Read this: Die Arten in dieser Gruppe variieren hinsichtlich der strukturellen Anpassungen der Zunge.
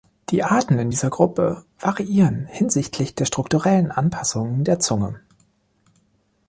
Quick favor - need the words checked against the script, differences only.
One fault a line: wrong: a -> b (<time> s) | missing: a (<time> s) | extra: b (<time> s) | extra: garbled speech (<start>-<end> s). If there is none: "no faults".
no faults